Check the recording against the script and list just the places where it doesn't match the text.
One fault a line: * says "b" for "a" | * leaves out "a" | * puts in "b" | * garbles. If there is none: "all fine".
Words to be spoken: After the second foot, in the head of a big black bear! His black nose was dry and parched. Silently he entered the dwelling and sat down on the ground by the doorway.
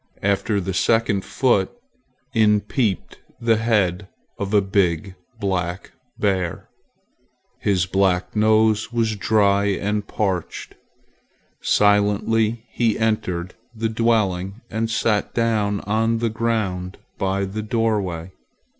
* puts in "peeped"